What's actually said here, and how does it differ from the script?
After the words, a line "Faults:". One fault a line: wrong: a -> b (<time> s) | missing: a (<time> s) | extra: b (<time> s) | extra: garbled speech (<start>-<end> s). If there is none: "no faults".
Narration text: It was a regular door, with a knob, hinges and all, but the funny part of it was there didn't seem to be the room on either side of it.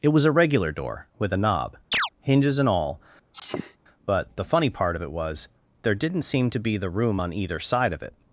It was a regular door, with a knob, hinges and all, but the funny part of it was there didn't seem to be the room on either side of it.
Faults:
no faults